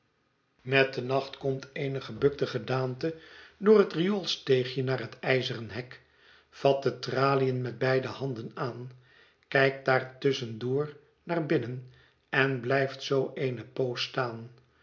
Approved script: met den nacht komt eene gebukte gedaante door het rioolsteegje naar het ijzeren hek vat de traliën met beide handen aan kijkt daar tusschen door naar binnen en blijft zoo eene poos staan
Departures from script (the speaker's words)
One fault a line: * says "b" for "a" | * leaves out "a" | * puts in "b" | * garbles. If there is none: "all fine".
all fine